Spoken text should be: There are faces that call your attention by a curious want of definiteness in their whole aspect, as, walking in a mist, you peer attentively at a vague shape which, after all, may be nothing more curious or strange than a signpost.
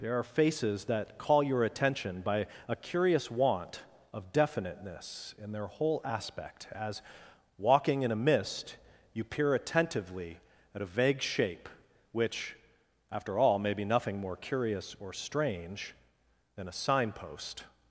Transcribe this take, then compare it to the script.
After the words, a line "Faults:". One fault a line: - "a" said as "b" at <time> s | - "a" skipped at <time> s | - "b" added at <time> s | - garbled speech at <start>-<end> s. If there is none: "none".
There are faces that call your attention by a curious want of definiteness in their whole aspect, as, walking in a mist, you peer attentively at a vague shape which, after all, may be nothing more curious or strange than a signpost.
Faults:
none